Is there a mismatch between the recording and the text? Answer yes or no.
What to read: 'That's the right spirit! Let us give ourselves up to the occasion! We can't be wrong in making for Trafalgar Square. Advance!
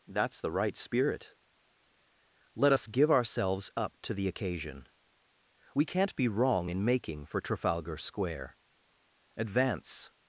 no